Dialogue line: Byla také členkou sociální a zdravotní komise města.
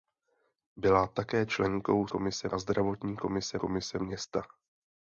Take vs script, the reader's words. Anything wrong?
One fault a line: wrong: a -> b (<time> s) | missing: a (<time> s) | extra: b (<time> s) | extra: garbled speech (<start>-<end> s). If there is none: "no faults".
wrong: sociální -> komise (2.1 s)
extra: komise (3.6 s)